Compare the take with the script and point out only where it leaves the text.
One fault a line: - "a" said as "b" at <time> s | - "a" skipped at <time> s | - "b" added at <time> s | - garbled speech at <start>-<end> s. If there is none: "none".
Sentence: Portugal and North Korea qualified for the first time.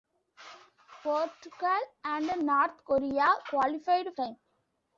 - "for the first" skipped at 4.1 s